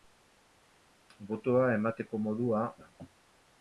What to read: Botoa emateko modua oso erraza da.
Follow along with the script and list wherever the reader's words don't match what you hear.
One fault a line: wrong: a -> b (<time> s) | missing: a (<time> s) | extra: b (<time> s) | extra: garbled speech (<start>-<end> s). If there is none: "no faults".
missing: oso erraza (2.6 s)